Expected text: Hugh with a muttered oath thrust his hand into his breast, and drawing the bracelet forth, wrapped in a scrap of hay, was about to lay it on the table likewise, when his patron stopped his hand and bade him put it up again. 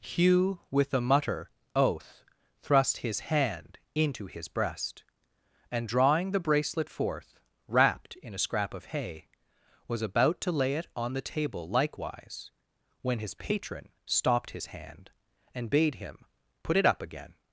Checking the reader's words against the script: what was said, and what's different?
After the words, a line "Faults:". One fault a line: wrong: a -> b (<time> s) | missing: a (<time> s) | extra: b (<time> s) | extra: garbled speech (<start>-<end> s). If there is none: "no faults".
Hugh with a mutter oath thrust his hand into his breast, and drawing the bracelet forth, wrapped in a scrap of hay, was about to lay it on the table likewise, when his patron stopped his hand and bade him put it up again.
Faults:
wrong: muttered -> mutter (1.0 s)